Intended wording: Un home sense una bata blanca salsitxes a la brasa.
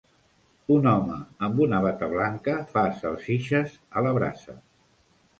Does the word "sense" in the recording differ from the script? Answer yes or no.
yes